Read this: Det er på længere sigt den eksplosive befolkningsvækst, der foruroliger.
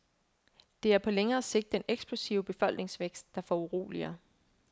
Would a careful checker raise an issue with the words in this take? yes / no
no